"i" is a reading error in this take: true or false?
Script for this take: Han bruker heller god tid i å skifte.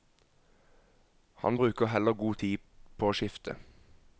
true